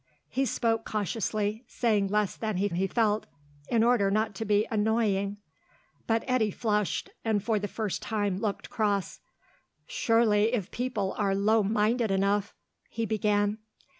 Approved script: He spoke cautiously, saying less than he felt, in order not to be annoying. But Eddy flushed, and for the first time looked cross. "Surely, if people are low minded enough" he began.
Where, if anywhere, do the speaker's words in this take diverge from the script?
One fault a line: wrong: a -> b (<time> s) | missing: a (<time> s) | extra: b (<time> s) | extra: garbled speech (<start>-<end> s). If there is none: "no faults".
extra: he (2.7 s)